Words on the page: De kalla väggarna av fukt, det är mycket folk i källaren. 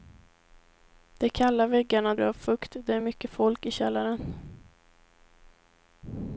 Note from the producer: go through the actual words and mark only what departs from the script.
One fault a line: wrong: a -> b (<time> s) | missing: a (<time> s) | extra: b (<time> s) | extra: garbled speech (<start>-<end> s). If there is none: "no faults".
no faults